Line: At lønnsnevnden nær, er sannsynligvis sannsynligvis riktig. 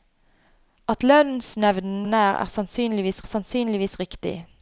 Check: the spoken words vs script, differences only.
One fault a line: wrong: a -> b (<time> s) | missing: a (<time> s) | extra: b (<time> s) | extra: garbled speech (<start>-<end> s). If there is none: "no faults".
no faults